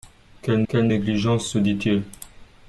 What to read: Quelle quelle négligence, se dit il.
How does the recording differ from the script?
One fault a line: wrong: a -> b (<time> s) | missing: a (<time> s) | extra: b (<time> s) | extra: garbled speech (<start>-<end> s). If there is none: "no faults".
no faults